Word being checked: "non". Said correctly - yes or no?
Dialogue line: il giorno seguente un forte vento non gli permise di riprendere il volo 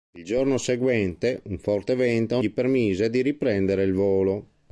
no